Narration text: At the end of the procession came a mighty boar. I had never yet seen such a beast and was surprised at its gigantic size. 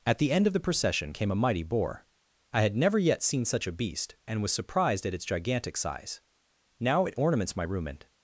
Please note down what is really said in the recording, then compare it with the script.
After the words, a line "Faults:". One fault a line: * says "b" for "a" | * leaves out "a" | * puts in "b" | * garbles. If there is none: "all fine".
At the end of the procession came a mighty boar. I had never yet seen such a beast and was surprised at its gigantic size. Now it ornaments my room and
Faults:
* puts in "Now it ornaments my room and"